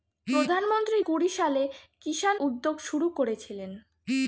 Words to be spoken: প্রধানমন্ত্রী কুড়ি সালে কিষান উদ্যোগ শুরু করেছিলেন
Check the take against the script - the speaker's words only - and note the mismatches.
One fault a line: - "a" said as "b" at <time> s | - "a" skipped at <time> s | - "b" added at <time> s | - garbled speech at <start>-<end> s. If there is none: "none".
none